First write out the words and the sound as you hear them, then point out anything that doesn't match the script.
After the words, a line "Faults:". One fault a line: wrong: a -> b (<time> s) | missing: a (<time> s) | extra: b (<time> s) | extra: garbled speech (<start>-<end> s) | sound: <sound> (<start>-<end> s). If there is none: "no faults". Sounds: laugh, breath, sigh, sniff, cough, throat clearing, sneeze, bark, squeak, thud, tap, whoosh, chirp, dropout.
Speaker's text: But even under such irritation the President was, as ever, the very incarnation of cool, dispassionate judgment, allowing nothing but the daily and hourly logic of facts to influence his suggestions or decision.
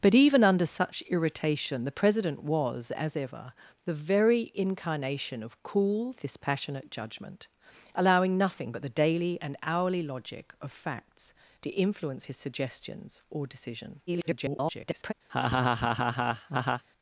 But even under such irritation the President was, as ever, the very incarnation of cool, dispassionate judgment, allowing nothing but the daily and hourly logic of facts to influence his suggestions or decision. [garbled]
Faults:
extra: garbled speech (14.1-15.1 s)
sound: laugh (15.3-16.8 s)